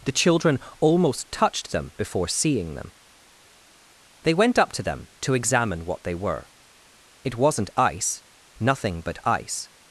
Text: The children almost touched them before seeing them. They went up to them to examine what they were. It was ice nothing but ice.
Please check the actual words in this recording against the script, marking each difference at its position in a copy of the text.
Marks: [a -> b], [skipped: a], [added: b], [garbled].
The children almost touched them before seeing them. They went up to them to examine what they were. It [was -> wasn't] ice nothing but ice.